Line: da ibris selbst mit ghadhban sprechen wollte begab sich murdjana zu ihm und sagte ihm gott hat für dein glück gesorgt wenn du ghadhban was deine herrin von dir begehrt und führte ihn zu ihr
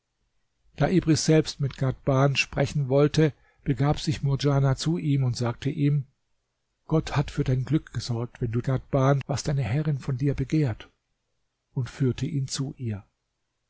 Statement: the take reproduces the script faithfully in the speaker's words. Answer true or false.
true